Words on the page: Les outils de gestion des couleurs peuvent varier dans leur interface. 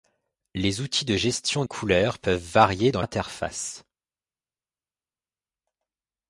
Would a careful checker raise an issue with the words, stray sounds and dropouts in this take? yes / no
yes